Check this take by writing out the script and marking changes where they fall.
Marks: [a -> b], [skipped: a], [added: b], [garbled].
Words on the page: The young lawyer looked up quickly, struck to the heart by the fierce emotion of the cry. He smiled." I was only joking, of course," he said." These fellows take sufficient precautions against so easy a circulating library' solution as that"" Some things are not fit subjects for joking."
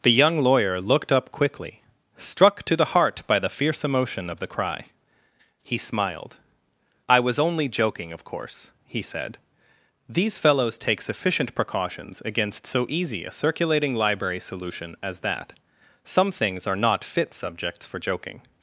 The young lawyer looked up quickly, struck to the heart by the fierce emotion of the cry. He smiled." I was only joking, of course," he said." These fellows take sufficient precautions against so easy a circulating library' solution as that"" Some things are not fit subjects for joking."